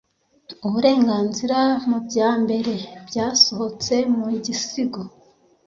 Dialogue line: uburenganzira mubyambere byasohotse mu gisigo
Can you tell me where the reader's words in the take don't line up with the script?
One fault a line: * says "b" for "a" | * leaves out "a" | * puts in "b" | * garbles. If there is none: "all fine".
all fine